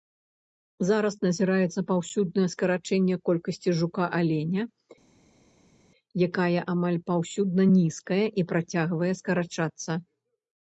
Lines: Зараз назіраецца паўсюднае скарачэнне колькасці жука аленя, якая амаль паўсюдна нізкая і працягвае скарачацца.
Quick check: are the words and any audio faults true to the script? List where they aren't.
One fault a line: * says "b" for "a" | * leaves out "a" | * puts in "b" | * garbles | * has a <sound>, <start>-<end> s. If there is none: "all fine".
all fine